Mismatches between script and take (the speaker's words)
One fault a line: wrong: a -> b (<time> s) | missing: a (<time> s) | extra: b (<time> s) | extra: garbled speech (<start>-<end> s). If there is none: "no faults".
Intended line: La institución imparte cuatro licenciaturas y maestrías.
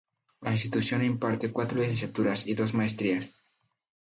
extra: dos (2.5 s)